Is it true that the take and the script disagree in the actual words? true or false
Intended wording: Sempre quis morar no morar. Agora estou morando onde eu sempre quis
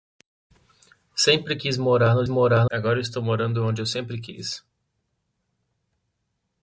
false